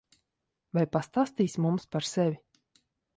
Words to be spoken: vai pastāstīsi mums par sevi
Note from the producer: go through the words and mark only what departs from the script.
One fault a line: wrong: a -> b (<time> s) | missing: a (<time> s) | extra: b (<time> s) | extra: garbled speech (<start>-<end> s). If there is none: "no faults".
no faults